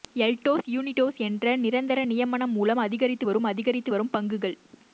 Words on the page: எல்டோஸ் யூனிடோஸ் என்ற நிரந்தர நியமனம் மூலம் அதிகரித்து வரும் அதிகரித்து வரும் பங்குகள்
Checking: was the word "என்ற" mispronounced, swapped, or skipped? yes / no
no